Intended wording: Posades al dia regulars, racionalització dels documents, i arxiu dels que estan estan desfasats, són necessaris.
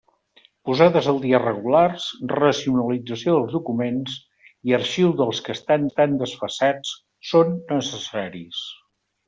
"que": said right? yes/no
yes